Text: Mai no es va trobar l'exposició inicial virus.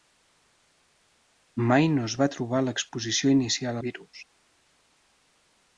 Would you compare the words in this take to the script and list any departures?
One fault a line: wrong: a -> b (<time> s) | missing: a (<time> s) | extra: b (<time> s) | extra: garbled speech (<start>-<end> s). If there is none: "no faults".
no faults